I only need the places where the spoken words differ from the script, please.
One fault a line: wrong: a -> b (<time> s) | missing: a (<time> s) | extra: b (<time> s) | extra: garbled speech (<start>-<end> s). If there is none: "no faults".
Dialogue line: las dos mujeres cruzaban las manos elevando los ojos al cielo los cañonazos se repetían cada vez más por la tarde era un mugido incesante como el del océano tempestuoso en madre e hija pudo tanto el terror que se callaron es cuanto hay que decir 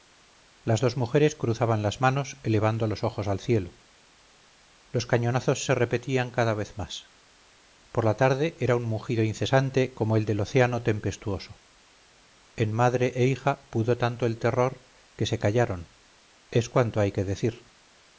no faults